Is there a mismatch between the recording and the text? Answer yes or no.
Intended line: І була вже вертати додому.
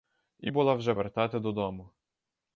no